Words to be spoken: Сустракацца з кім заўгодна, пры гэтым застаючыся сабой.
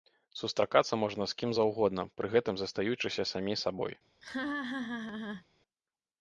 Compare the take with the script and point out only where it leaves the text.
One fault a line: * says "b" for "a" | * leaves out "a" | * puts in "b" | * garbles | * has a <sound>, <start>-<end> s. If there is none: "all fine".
* puts in "можна"
* puts in "самі"
* has a laugh, 4.2-5.5 s